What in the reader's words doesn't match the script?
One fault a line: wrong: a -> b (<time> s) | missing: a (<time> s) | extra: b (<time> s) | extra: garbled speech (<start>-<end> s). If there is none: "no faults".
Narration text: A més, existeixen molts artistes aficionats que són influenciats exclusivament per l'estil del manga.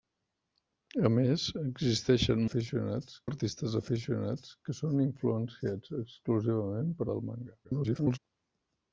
wrong: molts -> aficionats (2.5 s)
missing: l'estil (7.1 s)
extra: garbled speech (7.6-8.2 s)